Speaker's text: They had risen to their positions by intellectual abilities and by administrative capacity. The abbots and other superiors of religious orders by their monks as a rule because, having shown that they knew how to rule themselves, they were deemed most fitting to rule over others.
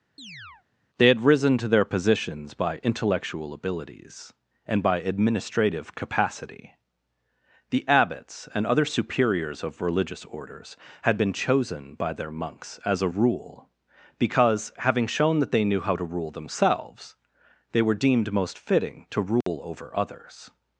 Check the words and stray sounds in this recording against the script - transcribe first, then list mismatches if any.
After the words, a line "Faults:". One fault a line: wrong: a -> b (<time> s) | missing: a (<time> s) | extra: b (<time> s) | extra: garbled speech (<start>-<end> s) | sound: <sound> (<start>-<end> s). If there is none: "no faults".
They had risen to their positions by intellectual abilities and by administrative capacity. The abbots and other superiors of religious orders had been chosen by their monks as a rule because, having shown that they knew how to rule themselves, they were deemed most fitting to rule over others.
Faults:
sound: chirp (0.2-0.6 s)
extra: had been chosen (11.0 s)
sound: dropout (19.4-19.5 s)